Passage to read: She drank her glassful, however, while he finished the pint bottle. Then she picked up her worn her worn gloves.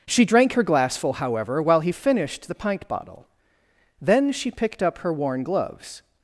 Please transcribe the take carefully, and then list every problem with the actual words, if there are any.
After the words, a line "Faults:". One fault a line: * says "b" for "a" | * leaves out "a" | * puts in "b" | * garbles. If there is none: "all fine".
She drank her glassful, however, while he finished the pint bottle. Then she picked up her worn gloves.
Faults:
* leaves out "her worn"